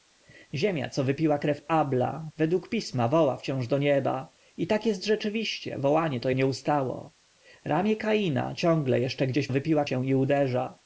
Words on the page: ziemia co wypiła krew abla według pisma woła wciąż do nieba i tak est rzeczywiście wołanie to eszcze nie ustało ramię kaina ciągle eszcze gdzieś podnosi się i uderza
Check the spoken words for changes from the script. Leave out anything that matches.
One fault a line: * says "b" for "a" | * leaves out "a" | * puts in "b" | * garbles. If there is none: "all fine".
* leaves out "eszcze"
* says "wypiła" for "podnosi"